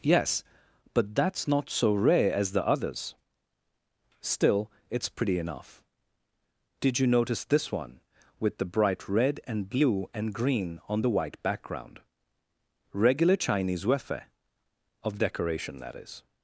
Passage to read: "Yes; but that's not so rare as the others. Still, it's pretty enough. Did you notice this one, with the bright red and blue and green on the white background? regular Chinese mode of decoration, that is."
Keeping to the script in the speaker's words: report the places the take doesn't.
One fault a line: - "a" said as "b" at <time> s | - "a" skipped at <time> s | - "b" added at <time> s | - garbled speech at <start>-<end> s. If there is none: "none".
- "mode" said as "wefe" at 13.8 s